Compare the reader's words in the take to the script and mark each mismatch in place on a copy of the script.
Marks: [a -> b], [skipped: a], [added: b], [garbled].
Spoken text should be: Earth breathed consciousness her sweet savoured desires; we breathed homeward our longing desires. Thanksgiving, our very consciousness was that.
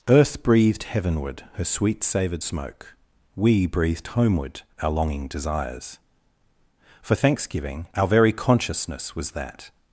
Earth breathed [consciousness -> heavenward] her sweet savoured [desires; -> smoke] we breathed homeward our longing desires. [added: For] Thanksgiving, our very consciousness was that.